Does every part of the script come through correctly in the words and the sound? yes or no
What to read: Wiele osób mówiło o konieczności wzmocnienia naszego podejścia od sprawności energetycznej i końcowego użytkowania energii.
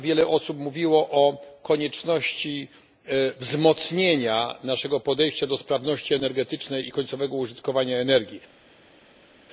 no